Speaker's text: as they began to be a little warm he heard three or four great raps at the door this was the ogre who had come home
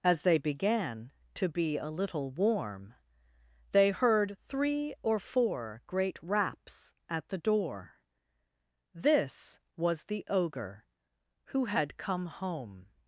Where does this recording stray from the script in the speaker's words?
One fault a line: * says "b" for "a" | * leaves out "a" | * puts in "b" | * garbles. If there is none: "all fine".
* says "they" for "he"